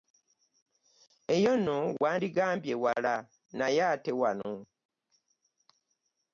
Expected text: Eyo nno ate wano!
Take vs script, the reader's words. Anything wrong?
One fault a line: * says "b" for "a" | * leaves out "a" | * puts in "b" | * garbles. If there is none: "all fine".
* puts in "wandigambye wala naye"